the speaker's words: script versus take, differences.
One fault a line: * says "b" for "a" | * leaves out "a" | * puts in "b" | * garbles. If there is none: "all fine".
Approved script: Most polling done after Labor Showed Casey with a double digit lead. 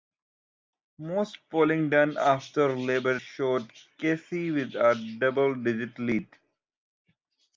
all fine